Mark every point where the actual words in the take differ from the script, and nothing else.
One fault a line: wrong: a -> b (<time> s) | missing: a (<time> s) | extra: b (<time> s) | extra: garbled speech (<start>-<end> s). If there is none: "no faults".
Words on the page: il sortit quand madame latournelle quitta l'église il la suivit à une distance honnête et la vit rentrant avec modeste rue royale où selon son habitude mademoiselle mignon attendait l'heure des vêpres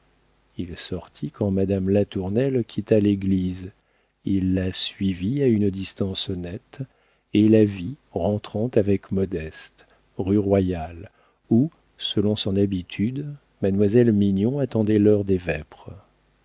no faults